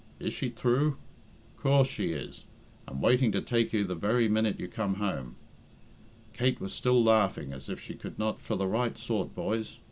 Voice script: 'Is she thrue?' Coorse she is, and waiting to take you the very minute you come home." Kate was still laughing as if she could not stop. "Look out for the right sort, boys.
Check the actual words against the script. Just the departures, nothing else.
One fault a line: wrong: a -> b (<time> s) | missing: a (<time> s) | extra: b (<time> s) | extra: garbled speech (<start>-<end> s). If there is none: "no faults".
missing: stop Look out (8.4 s)